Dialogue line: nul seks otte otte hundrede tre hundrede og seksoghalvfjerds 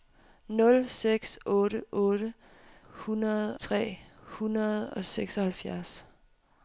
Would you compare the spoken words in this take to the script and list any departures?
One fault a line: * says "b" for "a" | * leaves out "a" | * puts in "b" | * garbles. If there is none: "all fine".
all fine